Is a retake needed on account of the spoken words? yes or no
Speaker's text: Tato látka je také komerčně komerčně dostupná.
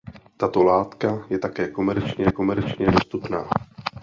no